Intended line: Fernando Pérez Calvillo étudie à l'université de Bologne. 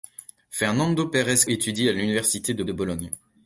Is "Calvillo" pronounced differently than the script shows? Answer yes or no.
yes